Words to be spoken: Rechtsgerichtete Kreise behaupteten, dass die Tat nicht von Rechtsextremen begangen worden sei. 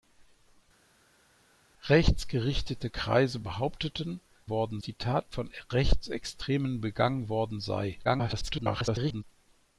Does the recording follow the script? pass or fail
fail